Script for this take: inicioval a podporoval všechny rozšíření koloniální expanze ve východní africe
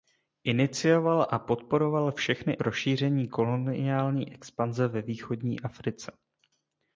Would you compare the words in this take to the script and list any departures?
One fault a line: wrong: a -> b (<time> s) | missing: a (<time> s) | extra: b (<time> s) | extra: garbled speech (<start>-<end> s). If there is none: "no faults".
no faults